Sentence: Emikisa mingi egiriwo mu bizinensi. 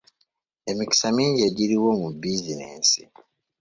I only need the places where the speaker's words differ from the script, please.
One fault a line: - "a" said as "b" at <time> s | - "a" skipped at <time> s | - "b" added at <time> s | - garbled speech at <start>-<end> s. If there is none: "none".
none